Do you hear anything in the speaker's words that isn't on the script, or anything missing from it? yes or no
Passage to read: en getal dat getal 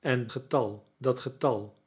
no